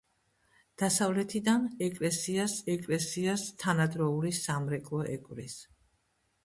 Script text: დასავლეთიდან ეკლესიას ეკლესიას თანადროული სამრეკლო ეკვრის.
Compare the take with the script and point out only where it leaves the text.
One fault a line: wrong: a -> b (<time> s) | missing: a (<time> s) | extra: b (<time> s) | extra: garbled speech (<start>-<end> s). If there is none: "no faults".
no faults